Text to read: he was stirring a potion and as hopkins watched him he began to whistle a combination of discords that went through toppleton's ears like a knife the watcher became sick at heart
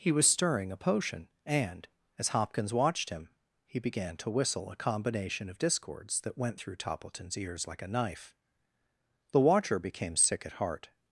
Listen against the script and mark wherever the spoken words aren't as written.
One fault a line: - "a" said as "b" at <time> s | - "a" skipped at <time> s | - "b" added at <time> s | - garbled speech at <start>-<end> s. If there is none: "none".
none